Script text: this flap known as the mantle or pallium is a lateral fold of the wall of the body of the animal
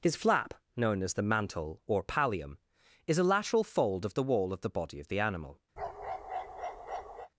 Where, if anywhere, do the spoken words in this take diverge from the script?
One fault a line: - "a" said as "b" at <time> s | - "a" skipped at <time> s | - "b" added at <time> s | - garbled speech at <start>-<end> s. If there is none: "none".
- "this" said as "his" at 0.0 s